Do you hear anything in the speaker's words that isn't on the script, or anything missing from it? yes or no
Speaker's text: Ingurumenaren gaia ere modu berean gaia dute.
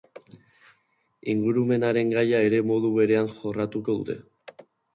yes